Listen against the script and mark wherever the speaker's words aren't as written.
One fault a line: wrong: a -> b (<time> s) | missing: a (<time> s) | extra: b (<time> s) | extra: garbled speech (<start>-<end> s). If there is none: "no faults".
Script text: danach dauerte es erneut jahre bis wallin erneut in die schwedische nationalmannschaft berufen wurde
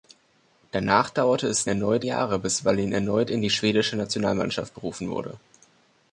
no faults